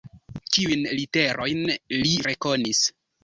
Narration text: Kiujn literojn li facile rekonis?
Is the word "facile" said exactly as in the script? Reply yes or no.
no